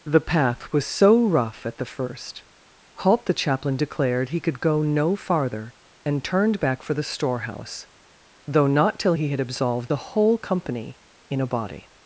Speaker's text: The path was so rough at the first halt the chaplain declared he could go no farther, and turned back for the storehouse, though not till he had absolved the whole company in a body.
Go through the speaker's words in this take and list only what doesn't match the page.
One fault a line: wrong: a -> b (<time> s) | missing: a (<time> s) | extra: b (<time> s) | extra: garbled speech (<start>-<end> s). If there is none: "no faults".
no faults